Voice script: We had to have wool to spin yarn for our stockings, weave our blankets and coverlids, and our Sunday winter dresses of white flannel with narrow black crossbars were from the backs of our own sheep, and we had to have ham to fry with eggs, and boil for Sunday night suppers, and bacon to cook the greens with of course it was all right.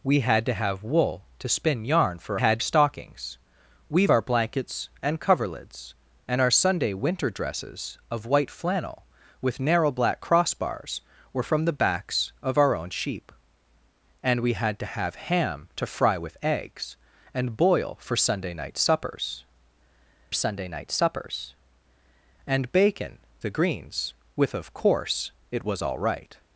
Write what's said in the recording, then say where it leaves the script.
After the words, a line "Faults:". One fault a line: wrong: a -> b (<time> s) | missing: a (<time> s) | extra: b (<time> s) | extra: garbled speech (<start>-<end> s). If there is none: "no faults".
We had to have wool to spin yarn for had stockings, weave our blankets and coverlids, and our Sunday winter dresses of white flannel with narrow black crossbars were from the backs of our own sheep, and we had to have ham to fry with eggs, and boil for Sunday night suppers Sunday night suppers, and bacon the greens with of course it was all right.
Faults:
wrong: our -> had (2.4 s)
extra: Sunday night suppers (20.3 s)
missing: to cook (23.2 s)